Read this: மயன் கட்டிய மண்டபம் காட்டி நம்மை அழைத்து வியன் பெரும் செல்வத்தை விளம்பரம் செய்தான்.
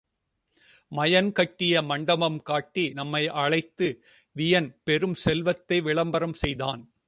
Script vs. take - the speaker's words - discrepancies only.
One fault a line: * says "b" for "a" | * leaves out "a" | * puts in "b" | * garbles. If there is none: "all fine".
all fine